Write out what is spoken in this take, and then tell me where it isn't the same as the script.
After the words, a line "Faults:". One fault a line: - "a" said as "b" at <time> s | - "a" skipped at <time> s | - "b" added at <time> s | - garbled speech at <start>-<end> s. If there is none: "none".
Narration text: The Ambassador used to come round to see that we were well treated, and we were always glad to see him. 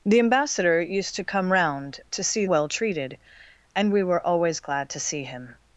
The Ambassador used to come round to see well treated, and we were always glad to see him.
Faults:
- "that we were" skipped at 2.5 s